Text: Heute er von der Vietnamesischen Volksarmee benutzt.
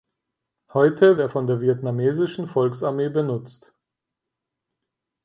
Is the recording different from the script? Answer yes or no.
no